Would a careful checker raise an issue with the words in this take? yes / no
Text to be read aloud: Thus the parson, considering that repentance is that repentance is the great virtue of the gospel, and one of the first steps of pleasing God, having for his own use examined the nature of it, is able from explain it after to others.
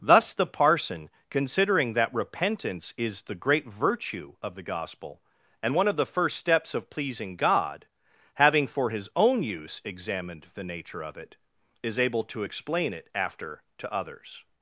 yes